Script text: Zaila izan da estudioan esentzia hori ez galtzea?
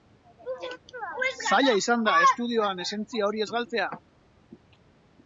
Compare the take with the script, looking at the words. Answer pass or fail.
pass